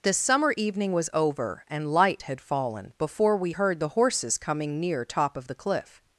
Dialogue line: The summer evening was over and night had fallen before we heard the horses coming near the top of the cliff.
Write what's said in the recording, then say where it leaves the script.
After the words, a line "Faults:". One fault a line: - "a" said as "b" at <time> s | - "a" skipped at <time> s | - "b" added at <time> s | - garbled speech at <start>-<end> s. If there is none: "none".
The summer evening was over and light had fallen before we heard the horses coming near top of the cliff.
Faults:
- "night" said as "light" at 1.9 s
- "the" skipped at 5.1 s